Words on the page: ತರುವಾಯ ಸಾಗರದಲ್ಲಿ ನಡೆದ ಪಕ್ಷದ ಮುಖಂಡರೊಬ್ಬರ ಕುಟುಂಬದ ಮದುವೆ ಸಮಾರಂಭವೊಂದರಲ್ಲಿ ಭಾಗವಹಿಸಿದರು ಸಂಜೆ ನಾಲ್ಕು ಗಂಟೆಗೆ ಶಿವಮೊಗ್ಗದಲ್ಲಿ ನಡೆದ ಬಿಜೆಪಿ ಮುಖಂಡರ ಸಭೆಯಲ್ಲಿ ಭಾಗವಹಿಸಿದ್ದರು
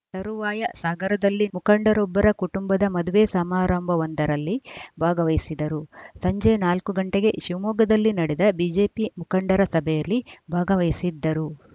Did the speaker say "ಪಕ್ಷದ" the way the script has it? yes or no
no